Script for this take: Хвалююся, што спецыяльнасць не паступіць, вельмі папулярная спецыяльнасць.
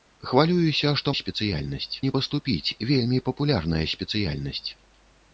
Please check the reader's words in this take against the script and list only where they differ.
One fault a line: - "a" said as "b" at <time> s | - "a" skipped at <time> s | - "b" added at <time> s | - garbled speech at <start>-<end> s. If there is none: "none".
none